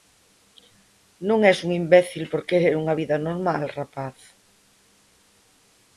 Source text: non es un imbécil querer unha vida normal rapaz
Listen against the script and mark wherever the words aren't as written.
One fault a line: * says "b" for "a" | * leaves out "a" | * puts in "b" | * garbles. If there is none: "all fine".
* puts in "por"